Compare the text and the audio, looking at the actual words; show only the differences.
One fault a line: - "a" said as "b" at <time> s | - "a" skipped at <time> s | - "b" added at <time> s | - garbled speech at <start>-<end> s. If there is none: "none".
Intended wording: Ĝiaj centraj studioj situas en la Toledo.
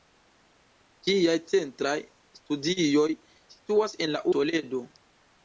none